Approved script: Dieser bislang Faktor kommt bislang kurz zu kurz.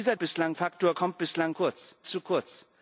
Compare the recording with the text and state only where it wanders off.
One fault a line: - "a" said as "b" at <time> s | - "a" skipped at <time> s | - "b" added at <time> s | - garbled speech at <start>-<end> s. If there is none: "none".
none